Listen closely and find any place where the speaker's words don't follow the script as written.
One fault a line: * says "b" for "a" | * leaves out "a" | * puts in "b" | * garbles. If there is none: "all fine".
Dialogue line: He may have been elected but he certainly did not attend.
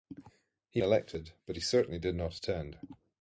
* leaves out "may have been"